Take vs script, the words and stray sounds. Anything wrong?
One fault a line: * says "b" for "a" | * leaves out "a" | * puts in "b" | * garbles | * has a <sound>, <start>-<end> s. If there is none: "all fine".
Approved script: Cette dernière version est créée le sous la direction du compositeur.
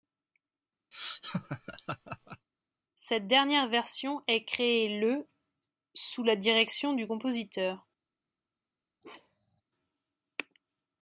* has a laugh, 0.9-2.5 s
* has a bark, 9.0-9.6 s